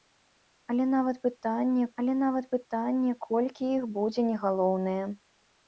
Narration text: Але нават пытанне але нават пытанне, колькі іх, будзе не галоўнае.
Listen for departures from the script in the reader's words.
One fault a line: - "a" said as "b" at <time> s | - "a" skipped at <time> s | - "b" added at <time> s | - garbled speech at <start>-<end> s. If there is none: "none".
none